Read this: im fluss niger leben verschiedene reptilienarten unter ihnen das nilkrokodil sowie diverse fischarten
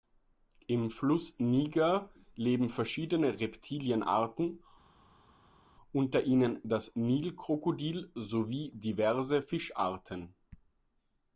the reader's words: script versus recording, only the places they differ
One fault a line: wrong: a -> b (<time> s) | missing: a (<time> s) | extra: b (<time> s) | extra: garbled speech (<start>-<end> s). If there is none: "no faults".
no faults